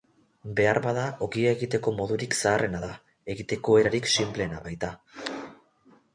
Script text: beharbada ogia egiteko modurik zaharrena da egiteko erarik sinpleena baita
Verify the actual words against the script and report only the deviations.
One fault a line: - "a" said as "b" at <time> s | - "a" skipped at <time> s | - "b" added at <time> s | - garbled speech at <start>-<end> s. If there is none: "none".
none